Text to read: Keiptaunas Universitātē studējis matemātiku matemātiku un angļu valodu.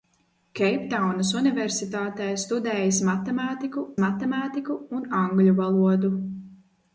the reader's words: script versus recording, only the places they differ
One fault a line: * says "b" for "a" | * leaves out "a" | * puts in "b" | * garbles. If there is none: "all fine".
all fine